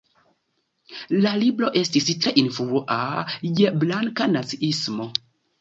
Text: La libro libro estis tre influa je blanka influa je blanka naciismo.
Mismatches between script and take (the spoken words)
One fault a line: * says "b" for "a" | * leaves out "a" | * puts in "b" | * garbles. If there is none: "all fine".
* leaves out "libro"
* leaves out "influa je blanka"